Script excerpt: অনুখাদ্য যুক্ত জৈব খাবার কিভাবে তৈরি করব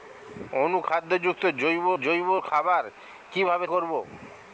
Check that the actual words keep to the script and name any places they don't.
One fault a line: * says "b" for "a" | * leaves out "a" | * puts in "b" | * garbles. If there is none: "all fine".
* puts in "জৈব"
* leaves out "তৈরি"